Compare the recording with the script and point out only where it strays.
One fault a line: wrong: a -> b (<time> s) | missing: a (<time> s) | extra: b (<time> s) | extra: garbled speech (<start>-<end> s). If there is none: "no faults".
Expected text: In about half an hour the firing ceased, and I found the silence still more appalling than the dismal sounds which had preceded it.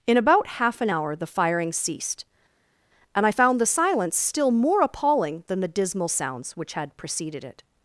no faults